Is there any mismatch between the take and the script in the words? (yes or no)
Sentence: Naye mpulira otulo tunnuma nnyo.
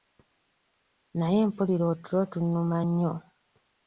no